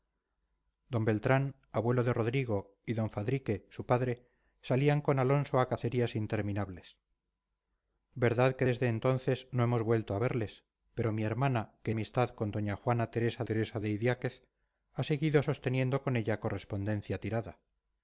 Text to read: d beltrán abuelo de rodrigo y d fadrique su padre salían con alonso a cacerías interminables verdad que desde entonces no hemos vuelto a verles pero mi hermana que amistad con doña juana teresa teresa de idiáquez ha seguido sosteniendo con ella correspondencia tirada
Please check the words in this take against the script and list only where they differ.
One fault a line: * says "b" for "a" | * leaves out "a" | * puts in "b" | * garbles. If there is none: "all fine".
all fine